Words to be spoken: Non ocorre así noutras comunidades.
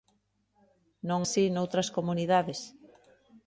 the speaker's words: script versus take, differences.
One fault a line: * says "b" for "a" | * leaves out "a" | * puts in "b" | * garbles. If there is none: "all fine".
* leaves out "ocorre"